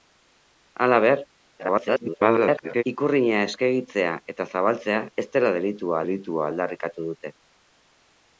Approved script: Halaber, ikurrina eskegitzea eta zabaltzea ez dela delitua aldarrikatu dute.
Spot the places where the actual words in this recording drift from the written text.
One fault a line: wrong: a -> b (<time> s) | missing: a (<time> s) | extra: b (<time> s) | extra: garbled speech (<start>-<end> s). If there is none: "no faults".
extra: garbled speech (1.6-2.8 s)
extra: delitua (6.0 s)